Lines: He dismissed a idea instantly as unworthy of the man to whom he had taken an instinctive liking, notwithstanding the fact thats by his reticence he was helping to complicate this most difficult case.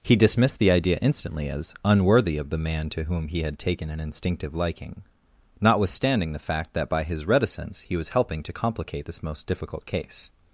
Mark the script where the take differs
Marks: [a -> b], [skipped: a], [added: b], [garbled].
He dismissed [a -> the] idea instantly as unworthy of the man to whom he had taken an instinctive liking, notwithstanding the fact [thats -> that] by his reticence he was helping to complicate this most difficult case.